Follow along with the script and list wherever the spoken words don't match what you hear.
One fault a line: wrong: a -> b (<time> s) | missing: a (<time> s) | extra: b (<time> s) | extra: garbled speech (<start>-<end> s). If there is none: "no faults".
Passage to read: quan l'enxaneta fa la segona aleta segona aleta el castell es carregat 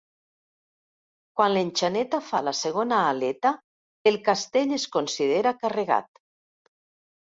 missing: segona aleta (3.5 s)
extra: considera (5.0 s)